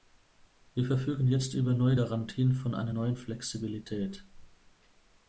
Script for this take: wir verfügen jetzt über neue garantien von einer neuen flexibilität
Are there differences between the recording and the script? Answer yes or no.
no